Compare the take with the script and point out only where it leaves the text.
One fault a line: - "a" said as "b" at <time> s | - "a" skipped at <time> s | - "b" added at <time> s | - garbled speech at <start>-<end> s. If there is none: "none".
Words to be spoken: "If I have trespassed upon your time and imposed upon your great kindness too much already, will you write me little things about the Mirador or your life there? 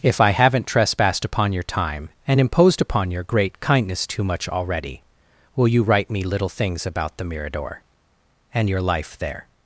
- "have" said as "haven't" at 0.3 s
- "or" said as "and" at 8.5 s